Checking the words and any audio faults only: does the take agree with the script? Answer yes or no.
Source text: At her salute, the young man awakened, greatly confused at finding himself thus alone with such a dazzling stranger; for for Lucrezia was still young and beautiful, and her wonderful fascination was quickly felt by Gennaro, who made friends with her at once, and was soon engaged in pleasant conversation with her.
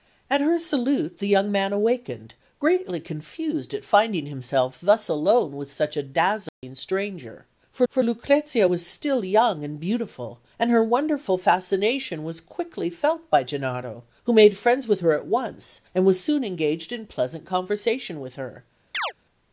no